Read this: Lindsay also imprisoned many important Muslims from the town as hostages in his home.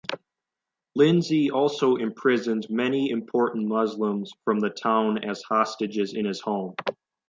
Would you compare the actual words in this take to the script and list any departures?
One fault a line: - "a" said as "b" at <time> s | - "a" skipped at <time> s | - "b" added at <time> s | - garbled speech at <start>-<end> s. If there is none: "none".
none